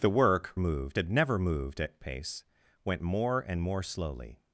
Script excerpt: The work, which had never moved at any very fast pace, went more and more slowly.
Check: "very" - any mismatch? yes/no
yes